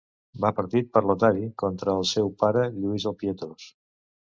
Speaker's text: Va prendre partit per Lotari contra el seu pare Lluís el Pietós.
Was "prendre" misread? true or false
true